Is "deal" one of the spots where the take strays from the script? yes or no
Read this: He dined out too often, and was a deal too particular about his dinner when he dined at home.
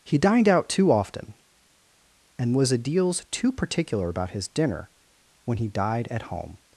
yes